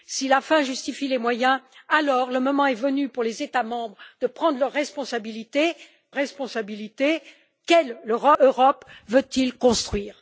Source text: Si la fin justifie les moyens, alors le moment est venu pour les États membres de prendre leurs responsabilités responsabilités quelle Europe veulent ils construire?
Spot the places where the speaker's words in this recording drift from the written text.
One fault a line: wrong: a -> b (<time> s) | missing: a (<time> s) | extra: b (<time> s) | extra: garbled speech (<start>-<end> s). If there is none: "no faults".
no faults